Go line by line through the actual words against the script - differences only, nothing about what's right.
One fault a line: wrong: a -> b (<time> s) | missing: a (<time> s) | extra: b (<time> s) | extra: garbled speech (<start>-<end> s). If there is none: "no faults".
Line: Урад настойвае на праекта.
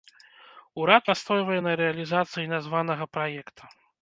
extra: рэалізацыі названага (1.8 s)